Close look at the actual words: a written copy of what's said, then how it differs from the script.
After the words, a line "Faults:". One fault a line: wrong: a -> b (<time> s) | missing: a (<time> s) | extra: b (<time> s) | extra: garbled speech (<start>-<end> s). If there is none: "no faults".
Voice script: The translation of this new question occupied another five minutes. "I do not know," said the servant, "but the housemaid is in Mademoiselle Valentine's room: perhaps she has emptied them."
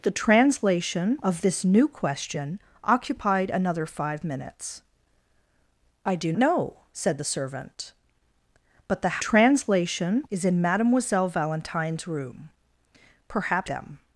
The translation of this new question occupied another five minutes. "I do know," said the servant, "but the translation is in Mademoiselle Valentine's room: perhaps them."
Faults:
missing: not (6.3 s)
wrong: housemaid -> translation (9.2 s)
missing: she has emptied (13.7 s)